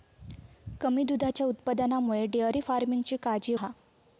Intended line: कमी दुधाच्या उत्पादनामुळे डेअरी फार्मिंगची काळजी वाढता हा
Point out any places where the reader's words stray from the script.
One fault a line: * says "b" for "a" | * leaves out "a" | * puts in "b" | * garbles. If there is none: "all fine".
* leaves out "वाढता"